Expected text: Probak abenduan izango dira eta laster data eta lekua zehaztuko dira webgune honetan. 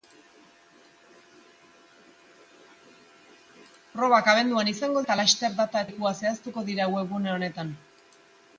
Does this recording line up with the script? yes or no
no